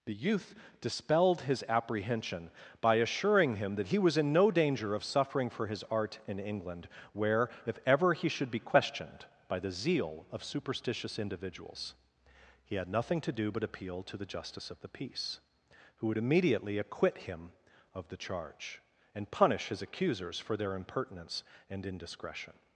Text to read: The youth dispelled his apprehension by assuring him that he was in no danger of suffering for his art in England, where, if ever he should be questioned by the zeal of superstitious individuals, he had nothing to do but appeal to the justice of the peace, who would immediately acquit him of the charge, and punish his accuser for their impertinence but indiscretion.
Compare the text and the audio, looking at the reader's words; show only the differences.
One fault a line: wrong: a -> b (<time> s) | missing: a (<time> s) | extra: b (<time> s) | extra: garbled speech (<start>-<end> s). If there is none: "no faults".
wrong: accuser -> accusers (19.8 s)
wrong: but -> and (21.7 s)